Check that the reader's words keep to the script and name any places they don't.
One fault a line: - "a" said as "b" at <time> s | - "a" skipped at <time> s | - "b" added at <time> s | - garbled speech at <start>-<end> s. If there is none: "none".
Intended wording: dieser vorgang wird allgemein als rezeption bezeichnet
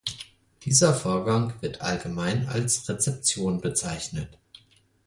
none